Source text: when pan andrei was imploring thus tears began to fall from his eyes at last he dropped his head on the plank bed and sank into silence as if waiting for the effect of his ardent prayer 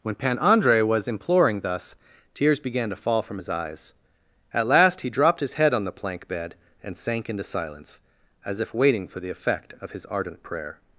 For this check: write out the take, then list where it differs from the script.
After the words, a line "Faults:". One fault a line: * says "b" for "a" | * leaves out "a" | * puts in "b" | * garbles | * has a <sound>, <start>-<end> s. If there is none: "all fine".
when pan andrei was imploring thus tears began to fall from his eyes at last he dropped his head on the plank bed and sank into silence as if waiting for the effect of his ardent prayer
Faults:
all fine